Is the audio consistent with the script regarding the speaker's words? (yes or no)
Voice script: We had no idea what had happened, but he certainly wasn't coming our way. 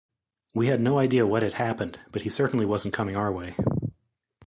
yes